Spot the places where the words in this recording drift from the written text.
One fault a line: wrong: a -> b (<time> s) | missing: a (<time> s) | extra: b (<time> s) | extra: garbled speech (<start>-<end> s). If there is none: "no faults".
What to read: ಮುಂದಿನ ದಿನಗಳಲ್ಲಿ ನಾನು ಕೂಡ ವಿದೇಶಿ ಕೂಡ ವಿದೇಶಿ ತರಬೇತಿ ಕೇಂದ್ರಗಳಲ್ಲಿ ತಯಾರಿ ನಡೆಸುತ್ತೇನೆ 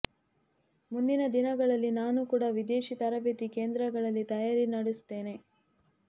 missing: ಕೂಡ ವಿದೇಶಿ (3.0 s)